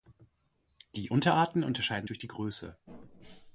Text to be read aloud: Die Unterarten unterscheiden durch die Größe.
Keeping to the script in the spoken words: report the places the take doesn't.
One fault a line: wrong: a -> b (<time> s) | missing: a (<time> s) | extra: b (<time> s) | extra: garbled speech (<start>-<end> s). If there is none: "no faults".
no faults